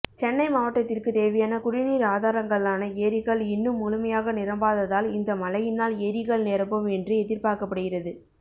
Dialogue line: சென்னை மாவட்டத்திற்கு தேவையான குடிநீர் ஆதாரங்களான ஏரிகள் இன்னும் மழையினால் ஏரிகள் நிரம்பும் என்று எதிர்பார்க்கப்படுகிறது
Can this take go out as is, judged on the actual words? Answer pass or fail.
fail